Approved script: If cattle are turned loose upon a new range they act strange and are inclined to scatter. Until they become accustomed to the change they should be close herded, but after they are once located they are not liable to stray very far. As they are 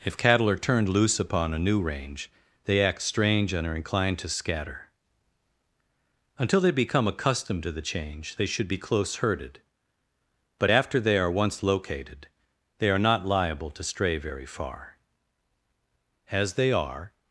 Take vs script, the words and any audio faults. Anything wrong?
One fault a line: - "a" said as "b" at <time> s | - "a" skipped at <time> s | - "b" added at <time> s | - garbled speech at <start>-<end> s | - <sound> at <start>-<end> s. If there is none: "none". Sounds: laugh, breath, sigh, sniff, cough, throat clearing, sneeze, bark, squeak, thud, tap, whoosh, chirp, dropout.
none